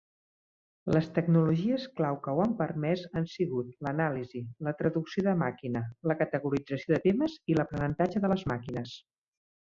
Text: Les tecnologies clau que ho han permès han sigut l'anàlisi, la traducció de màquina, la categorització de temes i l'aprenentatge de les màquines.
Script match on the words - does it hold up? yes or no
yes